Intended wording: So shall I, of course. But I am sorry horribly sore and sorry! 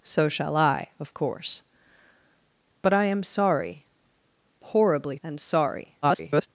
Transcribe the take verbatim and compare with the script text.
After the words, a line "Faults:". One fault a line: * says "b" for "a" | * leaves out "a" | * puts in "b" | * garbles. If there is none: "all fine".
So shall I, of course. But I am sorry horribly and sorry! [garbled]
Faults:
* leaves out "sore"
* garbles